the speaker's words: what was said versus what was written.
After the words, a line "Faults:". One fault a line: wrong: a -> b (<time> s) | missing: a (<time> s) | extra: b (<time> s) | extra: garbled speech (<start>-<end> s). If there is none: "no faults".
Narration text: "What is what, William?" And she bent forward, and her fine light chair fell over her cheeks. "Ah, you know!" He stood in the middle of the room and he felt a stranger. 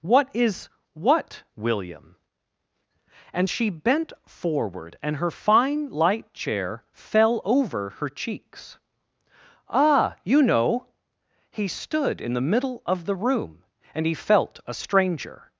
"What is what, William?" And she bent forward, and her fine light chair fell over her cheeks. "Ah, you know!" He stood in the middle of the room and he felt a stranger.
Faults:
no faults